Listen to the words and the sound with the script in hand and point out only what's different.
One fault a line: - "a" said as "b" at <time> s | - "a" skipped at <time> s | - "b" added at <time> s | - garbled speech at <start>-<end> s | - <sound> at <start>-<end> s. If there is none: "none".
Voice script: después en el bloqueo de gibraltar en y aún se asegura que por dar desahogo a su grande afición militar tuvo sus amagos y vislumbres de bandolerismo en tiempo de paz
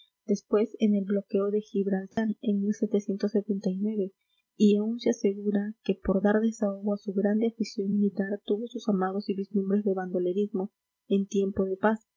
- dropout at 2.1-2.2 s